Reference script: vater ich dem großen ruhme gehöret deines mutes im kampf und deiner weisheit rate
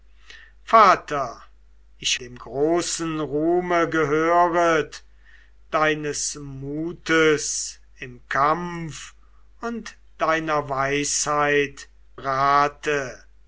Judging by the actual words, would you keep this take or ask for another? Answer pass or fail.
pass